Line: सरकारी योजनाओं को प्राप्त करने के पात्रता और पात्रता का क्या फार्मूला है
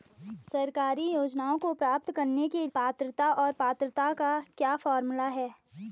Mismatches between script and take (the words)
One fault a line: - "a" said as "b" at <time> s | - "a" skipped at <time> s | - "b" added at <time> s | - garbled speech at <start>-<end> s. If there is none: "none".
none